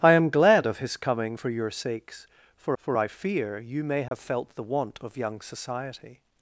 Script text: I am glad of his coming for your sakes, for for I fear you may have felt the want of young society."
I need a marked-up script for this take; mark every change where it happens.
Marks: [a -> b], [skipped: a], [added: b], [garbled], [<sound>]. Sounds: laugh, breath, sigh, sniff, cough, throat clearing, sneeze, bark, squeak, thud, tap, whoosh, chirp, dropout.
I am glad of his coming for your sakes, for for I fear you may have [dropout] felt the want of young society."